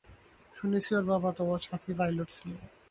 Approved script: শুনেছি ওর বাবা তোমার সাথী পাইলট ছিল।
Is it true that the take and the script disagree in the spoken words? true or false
false